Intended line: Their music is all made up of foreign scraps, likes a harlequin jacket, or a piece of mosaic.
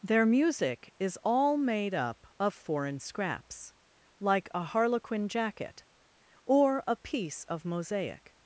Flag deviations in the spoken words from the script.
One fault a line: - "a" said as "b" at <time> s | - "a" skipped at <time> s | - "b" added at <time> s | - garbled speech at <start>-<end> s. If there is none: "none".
- "likes" said as "like" at 4.2 s